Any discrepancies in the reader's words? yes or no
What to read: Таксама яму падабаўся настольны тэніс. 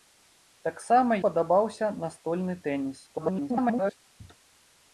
yes